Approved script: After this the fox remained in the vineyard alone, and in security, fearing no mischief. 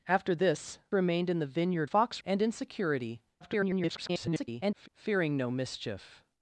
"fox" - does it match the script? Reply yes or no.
no